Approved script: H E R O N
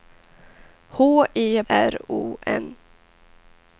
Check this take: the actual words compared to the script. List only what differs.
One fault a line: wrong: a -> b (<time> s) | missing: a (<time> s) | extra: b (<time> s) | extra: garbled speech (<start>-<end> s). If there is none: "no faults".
no faults